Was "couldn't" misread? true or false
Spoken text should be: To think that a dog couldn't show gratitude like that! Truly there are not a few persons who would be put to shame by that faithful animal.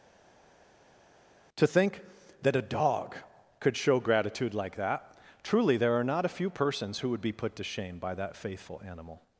true